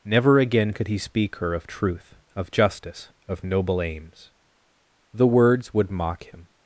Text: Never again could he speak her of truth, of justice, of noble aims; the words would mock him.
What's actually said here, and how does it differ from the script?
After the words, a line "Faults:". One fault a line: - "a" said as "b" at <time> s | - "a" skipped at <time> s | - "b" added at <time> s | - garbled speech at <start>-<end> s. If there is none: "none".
Never again could he speak her of truth, of justice, of noble aims; the words would mock him.
Faults:
none